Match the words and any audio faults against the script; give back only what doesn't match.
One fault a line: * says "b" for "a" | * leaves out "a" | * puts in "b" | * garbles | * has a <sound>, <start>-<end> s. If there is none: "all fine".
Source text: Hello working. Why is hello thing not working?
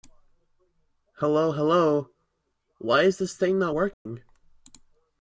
* says "hello" for "working"
* says "this" for "hello"
* has a dropout, 3.9-4.1 s